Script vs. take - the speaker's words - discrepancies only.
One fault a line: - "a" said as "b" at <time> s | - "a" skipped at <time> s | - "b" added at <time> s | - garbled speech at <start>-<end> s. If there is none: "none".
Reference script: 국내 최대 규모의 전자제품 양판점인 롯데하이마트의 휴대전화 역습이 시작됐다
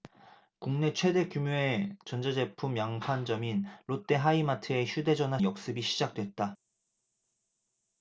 none